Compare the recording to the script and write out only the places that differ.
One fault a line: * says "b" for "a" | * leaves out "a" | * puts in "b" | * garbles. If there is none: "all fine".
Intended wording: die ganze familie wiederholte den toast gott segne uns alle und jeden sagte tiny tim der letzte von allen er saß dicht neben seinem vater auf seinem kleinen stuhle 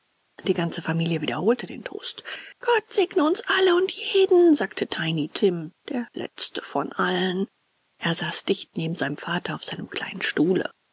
all fine